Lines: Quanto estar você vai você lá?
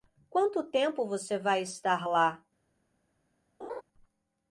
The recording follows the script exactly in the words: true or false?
false